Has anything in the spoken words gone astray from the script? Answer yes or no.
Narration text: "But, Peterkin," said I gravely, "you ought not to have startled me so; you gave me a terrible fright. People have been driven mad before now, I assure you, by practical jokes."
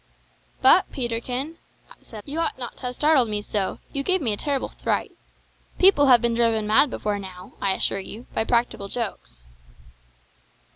yes